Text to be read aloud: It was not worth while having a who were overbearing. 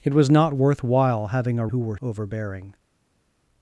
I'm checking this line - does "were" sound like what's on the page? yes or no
yes